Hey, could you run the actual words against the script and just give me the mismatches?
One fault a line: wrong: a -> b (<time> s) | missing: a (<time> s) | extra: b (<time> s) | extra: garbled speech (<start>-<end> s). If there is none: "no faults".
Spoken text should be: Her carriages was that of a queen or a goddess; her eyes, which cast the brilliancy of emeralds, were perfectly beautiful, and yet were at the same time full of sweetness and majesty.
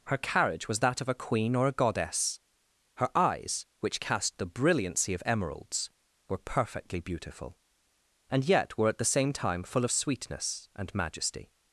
wrong: carriages -> carriage (0.2 s)